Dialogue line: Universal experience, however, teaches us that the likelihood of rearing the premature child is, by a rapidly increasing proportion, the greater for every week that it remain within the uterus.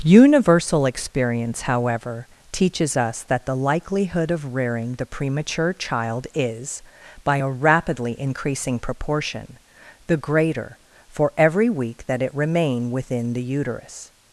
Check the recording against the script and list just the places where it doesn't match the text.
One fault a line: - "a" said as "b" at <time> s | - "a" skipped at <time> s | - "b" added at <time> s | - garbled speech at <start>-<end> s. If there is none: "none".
none